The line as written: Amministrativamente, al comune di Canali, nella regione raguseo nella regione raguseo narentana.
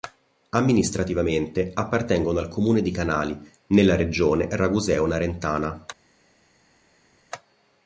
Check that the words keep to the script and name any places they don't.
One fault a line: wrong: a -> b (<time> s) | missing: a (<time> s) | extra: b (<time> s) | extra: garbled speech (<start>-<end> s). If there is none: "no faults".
extra: appartengono (1.8 s)
missing: nella regione raguseo (5.0 s)